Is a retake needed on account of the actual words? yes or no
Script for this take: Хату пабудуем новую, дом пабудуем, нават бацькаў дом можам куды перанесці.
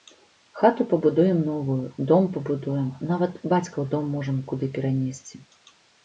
no